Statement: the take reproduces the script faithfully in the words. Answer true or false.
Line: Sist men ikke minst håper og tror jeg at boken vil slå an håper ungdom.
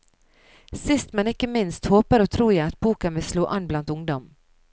false